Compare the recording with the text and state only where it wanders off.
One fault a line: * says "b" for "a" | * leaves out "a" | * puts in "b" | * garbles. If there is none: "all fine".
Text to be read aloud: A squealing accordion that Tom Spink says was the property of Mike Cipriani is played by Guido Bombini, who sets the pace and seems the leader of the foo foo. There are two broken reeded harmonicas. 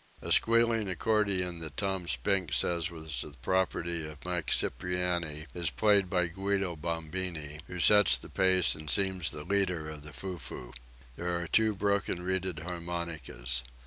all fine